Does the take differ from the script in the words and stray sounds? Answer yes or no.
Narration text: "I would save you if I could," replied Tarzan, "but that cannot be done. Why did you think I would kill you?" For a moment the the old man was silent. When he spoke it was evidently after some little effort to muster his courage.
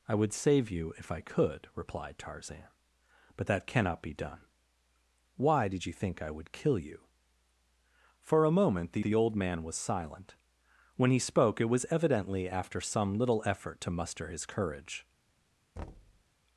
yes